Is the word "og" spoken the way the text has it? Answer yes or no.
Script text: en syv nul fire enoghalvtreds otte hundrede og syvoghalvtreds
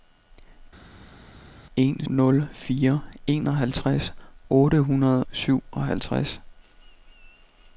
no